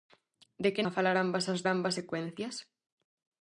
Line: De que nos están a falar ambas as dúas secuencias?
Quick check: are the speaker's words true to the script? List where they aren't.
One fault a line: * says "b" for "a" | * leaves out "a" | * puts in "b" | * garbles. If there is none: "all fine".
* leaves out "nos están"
* says "ambas" for "dúas"